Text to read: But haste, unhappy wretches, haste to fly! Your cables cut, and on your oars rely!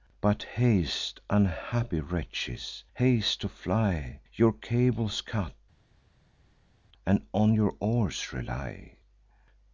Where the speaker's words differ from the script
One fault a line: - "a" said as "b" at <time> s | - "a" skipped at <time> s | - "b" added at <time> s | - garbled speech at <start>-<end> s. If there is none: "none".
none